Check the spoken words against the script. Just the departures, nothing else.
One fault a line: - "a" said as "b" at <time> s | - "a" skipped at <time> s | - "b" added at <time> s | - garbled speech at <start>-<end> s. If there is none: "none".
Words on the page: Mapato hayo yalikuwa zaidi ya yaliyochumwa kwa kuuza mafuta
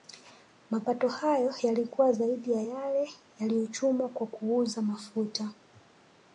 - "yale" added at 2.6 s